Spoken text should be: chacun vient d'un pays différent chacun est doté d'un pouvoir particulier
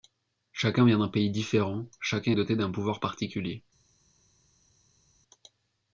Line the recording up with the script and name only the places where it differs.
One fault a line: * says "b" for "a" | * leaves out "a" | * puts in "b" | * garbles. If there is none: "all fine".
all fine